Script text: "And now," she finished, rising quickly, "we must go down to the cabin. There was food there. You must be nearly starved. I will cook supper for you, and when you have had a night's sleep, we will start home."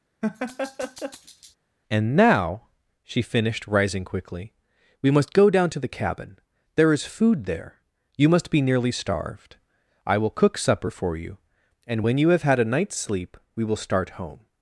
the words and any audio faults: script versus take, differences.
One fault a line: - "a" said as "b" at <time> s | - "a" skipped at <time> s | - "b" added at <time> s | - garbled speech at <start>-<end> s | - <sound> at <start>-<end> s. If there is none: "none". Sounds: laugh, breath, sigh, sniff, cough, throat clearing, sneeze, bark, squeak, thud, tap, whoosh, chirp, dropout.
- laugh at 0.2-1.6 s
- "was" said as "is" at 6.9 s